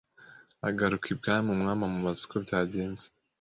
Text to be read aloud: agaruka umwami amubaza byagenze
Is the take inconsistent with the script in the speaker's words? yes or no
yes